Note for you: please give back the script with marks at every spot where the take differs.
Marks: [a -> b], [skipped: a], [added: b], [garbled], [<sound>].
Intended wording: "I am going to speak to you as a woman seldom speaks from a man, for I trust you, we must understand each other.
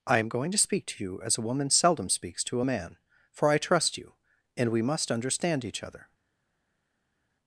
"I am going to speak to you as a woman seldom speaks [from -> to] a man, for I trust you, [added: and] we must understand each other.